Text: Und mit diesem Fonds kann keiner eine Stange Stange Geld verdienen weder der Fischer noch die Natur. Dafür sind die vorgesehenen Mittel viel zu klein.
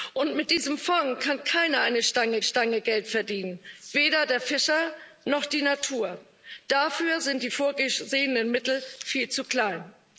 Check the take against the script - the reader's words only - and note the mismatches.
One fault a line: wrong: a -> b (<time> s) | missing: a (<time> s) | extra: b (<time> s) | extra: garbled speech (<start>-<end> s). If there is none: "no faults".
no faults